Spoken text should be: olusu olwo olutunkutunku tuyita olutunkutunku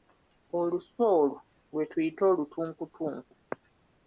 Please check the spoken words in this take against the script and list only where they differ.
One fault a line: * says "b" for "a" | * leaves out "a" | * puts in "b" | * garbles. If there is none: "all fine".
* says "lwe" for "olutunkutunku"